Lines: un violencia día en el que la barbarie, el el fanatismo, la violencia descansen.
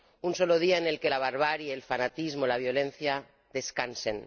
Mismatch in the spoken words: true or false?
true